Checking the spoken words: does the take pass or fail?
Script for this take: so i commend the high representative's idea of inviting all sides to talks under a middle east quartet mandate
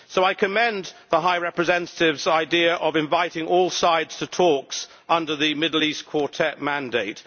fail